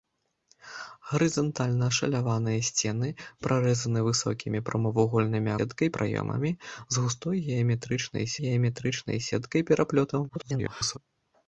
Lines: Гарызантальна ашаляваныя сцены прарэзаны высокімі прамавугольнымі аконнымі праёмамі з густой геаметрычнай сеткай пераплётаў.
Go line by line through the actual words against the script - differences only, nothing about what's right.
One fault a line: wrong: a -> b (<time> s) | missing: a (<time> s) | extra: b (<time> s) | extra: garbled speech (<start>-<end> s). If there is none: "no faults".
wrong: аконнымі -> сеткай (5.6 s)
extra: геаметрычнай (8.4 s)
extra: garbled speech (10.3-11.0 s)